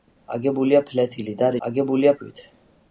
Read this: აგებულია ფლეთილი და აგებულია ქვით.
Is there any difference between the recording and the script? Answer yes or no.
no